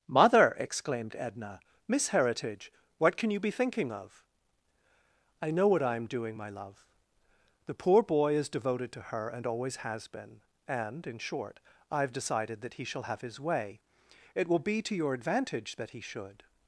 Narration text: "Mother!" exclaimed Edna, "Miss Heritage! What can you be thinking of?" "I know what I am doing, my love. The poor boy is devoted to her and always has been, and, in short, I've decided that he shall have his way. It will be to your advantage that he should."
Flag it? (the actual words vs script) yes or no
no